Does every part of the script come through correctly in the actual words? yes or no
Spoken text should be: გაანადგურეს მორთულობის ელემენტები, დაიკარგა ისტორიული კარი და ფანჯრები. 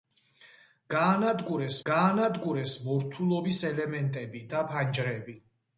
no